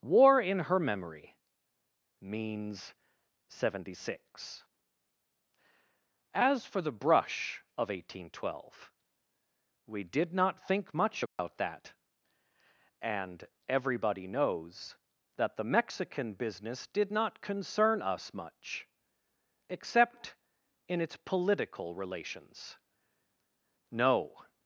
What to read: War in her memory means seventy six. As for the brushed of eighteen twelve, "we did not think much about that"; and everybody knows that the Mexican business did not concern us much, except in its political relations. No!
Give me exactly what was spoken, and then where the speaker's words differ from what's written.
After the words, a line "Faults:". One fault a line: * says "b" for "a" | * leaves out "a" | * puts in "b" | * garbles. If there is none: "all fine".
War in her memory means seventy six. As for the brush of eighteen twelve, "we did not think much about that"; and everybody knows that the Mexican business did not concern us much, except in its political relations. No!
Faults:
* says "brush" for "brushed"